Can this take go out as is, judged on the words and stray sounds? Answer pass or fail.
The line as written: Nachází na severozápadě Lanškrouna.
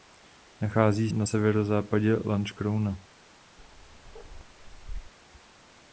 fail